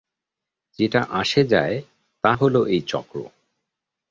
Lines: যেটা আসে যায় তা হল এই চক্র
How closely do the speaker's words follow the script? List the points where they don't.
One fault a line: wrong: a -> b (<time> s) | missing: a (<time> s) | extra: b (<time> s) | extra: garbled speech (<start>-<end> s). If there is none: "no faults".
no faults